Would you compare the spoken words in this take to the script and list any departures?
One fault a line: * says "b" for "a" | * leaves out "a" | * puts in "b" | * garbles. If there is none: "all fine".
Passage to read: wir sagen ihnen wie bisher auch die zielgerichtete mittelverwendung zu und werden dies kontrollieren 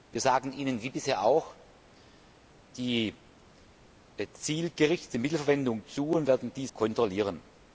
all fine